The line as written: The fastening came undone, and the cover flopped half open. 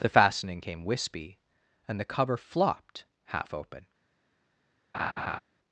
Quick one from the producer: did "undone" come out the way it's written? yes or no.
no